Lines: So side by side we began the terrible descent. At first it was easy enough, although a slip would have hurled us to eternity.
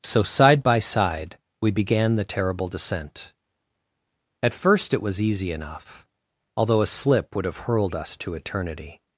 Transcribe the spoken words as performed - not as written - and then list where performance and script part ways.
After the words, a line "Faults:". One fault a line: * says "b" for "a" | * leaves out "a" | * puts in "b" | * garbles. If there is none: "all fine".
So side by side we began the terrible descent. At first it was easy enough, although a slip would have hurled us to eternity.
Faults:
all fine